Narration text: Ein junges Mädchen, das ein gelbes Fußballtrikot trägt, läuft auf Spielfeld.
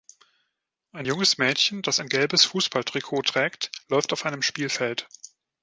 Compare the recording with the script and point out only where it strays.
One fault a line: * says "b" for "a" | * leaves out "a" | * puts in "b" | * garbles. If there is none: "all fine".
* puts in "einem"